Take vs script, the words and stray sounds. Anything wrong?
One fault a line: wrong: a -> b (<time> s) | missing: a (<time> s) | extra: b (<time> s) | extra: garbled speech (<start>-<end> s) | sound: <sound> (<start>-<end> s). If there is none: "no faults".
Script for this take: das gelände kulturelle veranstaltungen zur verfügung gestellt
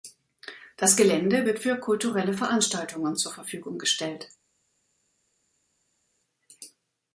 extra: wird für (1.4 s)